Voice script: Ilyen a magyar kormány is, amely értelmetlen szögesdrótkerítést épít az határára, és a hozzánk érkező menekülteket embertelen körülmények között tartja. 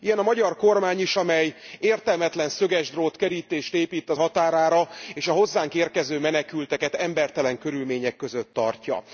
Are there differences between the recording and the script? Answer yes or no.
no